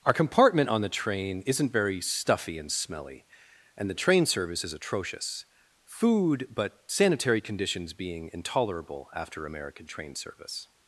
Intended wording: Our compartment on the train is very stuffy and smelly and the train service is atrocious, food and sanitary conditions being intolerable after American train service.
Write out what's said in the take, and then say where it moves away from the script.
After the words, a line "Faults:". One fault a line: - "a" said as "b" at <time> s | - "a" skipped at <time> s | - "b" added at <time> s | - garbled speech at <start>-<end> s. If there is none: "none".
Our compartment on the train isn't very stuffy and smelly and the train service is atrocious, food but sanitary conditions being intolerable after American train service.
Faults:
- "is" said as "isn't" at 1.4 s
- "and" said as "but" at 6.5 s